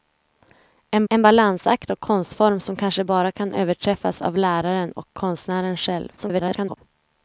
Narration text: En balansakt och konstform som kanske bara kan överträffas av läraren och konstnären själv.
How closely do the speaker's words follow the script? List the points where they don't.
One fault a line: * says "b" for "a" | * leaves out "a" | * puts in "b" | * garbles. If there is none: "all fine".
* puts in "en"
* garbles